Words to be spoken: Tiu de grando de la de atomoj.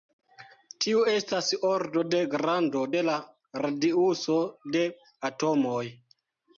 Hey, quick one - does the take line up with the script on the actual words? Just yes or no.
no